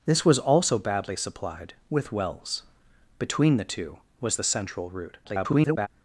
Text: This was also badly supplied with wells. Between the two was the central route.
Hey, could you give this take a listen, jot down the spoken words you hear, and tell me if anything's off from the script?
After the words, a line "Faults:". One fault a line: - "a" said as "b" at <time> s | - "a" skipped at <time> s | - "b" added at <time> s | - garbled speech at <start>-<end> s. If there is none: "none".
This was also badly supplied with wells. Between the two was the central route. [garbled]
Faults:
- garbled speech at 5.2-5.9 s